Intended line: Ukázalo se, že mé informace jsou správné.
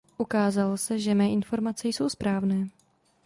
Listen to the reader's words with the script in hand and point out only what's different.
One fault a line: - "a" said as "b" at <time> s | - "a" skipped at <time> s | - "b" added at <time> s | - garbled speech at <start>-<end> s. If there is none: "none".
none